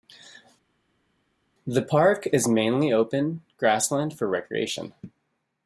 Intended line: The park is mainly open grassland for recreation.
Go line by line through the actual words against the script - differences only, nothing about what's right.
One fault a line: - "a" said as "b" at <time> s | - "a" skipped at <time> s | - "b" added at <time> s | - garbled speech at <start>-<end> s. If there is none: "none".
none